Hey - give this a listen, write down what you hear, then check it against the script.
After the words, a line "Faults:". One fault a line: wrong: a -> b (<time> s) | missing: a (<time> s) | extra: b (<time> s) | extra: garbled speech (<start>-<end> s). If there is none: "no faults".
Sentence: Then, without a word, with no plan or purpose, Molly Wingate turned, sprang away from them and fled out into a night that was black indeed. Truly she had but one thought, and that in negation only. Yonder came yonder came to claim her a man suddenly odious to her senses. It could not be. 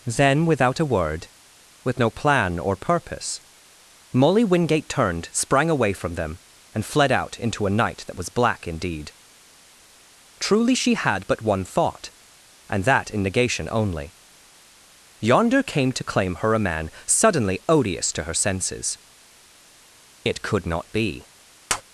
Then, without a word, with no plan or purpose, Molly Wingate turned, sprang away from them and fled out into a night that was black indeed. Truly she had but one thought, and that in negation only. Yonder came to claim her a man suddenly odious to her senses. It could not be.
Faults:
missing: yonder came (15.9 s)